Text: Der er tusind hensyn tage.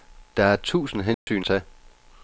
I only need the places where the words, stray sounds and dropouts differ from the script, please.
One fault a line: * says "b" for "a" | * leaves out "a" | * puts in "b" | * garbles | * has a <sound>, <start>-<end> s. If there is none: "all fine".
* has a dropout, 1.1-1.3 s